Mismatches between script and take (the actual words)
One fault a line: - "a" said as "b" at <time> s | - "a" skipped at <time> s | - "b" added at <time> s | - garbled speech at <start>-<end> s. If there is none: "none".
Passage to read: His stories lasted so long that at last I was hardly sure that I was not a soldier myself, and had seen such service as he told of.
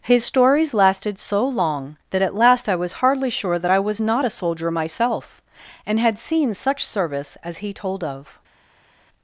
none